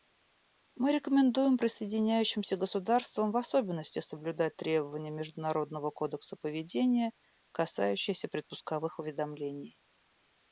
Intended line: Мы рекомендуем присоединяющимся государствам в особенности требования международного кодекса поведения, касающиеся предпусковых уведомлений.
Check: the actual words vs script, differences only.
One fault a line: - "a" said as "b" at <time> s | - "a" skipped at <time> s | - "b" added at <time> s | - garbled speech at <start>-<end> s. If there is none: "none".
- "соблюдать" added at 4.0 s